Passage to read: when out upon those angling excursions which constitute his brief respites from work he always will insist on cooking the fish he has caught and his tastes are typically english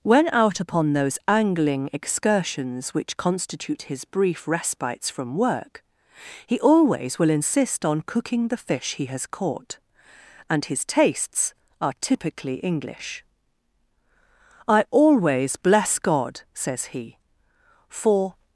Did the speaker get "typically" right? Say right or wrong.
right